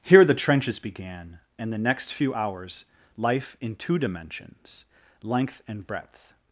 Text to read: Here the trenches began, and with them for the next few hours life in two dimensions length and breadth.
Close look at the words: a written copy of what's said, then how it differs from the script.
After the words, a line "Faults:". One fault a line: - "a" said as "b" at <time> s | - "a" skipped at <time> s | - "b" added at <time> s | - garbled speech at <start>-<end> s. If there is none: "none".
Here the trenches began, and the next few hours life in two dimensions length and breadth.
Faults:
- "with them for" skipped at 1.7 s